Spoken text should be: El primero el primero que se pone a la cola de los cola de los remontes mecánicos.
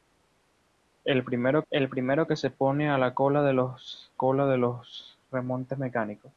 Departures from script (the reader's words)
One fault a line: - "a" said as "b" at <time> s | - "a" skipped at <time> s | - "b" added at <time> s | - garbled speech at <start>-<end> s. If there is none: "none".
none